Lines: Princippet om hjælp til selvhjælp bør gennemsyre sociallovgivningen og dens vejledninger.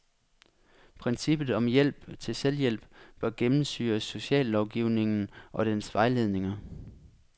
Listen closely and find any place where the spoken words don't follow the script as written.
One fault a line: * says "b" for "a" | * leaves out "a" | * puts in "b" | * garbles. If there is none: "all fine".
all fine